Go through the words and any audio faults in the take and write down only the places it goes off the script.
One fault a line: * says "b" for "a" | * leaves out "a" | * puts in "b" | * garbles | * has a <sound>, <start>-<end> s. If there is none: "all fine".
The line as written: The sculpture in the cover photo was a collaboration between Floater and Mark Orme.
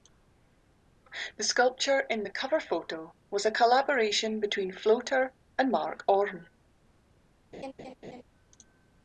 * has a laugh, 7.5-8.2 s